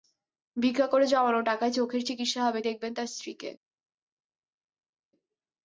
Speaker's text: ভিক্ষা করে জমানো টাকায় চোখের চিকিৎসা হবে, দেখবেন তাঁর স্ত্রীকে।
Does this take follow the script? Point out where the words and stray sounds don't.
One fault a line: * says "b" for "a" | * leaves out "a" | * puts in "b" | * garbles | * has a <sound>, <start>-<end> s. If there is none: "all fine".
all fine